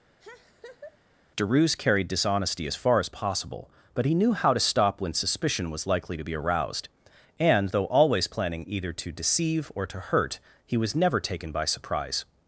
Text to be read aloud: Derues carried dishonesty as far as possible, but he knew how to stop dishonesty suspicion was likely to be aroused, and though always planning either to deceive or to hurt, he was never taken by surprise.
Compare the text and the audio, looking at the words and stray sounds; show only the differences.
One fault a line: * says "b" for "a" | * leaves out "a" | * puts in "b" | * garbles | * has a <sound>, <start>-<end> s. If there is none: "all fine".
* has a laugh, 0.2-1.0 s
* says "when" for "dishonesty"